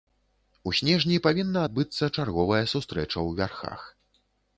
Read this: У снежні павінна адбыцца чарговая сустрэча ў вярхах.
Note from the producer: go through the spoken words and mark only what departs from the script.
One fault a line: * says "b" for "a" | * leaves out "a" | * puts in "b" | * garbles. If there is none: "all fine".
all fine